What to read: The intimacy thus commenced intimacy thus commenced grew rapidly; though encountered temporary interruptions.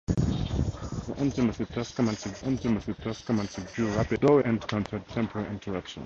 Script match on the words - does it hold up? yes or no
yes